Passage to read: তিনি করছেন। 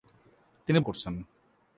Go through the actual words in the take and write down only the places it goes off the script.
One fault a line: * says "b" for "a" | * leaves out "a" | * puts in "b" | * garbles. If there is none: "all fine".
all fine